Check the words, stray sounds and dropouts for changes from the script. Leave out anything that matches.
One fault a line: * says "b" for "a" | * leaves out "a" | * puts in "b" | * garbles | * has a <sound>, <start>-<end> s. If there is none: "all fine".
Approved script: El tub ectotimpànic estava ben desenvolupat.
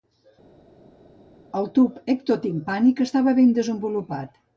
all fine